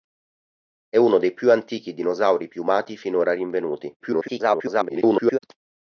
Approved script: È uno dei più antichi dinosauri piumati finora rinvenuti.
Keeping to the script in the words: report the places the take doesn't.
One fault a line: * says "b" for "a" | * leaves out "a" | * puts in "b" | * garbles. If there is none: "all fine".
* garbles